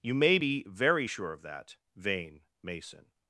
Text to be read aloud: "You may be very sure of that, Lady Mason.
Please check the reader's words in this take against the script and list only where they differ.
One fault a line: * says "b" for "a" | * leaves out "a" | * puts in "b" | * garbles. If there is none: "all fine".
* says "Vane" for "Lady"